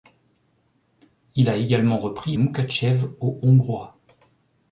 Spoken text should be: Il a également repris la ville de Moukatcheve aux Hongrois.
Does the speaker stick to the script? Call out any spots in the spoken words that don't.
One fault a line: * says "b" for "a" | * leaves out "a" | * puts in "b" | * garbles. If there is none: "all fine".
* leaves out "la ville de"